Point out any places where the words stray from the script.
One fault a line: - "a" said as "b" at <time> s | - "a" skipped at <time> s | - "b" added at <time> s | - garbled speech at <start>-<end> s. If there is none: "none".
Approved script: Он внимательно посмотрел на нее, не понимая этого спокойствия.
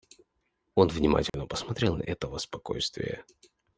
- "нее не понимая" skipped at 2.0 s